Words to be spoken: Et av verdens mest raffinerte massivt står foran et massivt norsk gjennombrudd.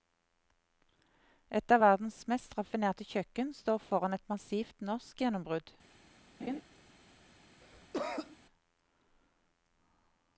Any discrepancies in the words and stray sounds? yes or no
yes